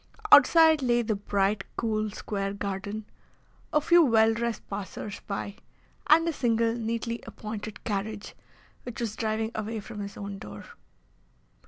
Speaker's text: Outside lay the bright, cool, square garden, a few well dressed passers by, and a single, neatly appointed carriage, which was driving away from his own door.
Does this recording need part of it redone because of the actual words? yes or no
no